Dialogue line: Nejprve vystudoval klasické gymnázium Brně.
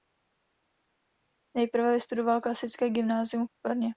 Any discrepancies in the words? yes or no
yes